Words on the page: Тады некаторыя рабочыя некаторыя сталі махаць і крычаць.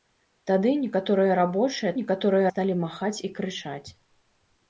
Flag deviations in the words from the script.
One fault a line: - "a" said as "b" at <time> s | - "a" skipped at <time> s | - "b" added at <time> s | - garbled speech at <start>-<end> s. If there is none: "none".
none